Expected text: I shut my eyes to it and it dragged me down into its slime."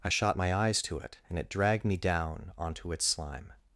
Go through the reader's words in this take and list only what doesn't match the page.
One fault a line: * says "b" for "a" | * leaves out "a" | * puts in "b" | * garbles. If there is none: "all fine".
* says "shot" for "shut"
* says "onto" for "into"